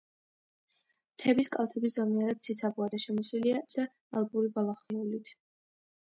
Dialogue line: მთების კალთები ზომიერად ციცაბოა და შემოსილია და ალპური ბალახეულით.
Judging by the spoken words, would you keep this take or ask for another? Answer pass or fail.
pass